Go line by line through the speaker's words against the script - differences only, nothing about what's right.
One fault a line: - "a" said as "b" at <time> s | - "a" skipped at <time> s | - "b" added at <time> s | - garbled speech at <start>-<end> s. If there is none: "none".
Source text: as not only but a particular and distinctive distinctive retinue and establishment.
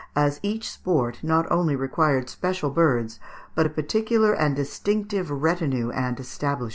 - "each sport" added at 0.4 s
- "required special birds" added at 1.7 s
- "distinctive" skipped at 5.3 s